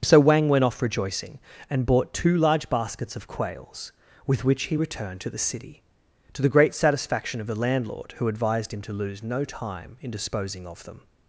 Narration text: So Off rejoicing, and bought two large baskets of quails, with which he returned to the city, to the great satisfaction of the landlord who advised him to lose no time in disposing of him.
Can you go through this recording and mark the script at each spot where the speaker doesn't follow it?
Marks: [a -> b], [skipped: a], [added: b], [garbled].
So [added: Wang went] Off rejoicing, and bought two large baskets of quails, with which he returned to the city, to the great satisfaction of the landlord who advised him to lose no time in disposing of [him. -> them]